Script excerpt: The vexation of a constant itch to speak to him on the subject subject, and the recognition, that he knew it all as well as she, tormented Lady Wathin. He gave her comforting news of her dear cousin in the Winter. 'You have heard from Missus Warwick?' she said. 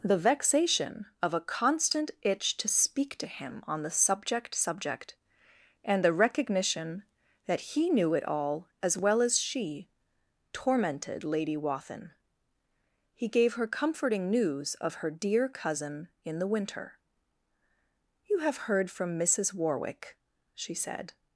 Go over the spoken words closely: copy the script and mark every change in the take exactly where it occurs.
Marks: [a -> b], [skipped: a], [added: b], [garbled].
The vexation of a constant itch to speak to him on the subject subject, and the recognition, that he knew it all as well as she, tormented Lady Wathin. He gave her comforting news of her dear cousin in the Winter. 'You have heard from Missus Warwick?' she said.